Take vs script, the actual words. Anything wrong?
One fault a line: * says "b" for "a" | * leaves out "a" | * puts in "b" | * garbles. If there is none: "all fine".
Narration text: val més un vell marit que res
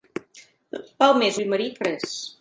* leaves out "un"
* leaves out "que"